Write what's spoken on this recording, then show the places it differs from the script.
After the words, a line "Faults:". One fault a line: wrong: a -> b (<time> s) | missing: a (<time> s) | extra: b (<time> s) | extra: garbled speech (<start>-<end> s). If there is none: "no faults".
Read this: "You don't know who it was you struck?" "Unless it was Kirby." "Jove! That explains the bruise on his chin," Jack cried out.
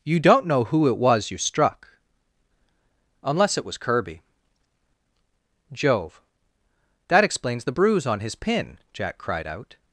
"You don't know who it was you struck?" "Unless it was Kirby." "Jove! That explains the bruise on his pin," Jack cried out.
Faults:
wrong: chin -> pin (8.3 s)